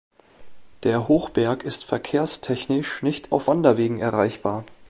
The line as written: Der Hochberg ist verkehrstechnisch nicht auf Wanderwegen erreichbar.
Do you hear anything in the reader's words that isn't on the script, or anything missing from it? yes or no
no